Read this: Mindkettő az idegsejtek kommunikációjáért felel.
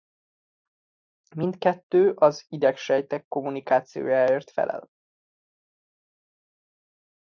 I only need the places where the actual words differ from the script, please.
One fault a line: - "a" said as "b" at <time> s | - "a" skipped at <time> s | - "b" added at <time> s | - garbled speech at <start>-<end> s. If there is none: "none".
none